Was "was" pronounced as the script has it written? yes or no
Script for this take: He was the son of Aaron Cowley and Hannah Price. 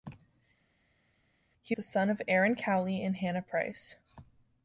no